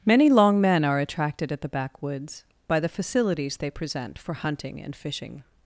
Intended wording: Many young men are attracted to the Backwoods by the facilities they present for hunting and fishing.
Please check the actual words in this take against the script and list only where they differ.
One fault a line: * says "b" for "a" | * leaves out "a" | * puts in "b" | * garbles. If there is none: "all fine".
* says "long" for "young"
* says "at" for "to"